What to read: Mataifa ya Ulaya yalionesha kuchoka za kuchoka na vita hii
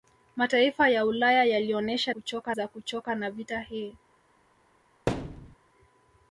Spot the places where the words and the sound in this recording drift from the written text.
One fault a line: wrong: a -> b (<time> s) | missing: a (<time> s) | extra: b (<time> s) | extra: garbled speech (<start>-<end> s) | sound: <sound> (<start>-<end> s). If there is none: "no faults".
sound: thud (5.1-5.6 s)